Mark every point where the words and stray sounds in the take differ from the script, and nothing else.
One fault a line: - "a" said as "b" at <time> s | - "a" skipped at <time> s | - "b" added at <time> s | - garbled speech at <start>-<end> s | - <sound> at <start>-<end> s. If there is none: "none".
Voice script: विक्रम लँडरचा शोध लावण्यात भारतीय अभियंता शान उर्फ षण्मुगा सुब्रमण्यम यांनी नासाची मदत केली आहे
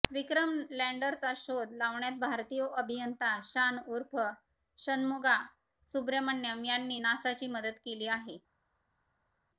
none